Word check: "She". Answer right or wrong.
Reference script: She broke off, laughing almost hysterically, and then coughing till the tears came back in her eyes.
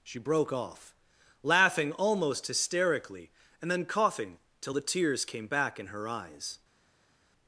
right